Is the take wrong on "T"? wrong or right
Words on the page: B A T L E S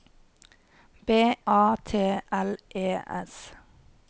right